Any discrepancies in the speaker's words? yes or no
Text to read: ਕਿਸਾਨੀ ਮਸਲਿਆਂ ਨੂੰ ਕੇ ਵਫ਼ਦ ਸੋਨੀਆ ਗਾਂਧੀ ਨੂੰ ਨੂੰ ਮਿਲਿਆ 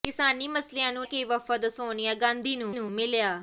no